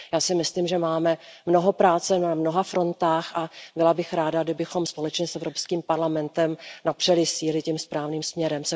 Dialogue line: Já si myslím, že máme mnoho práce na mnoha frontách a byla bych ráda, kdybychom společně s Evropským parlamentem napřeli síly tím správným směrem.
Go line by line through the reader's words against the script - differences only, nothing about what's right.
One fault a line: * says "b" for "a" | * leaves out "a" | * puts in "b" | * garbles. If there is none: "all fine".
all fine